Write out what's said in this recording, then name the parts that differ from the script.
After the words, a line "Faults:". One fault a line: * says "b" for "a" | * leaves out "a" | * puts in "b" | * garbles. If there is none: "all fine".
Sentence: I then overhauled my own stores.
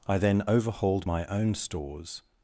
I then overhauled my own stores.
Faults:
all fine